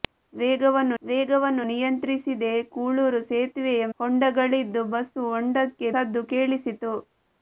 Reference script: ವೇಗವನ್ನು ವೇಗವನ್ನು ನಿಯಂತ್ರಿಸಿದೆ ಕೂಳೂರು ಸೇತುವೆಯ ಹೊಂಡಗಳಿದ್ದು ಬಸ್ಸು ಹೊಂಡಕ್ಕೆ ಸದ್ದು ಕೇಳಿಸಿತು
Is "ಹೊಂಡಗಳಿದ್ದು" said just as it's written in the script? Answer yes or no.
yes